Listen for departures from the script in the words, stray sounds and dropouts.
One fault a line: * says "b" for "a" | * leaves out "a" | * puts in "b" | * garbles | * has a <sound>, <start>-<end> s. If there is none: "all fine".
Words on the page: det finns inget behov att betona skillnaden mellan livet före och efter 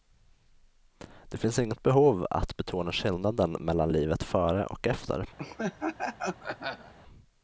* has a laugh, 5.4-6.9 s